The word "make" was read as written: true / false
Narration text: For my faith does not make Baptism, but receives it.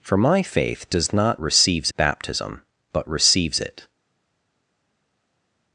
false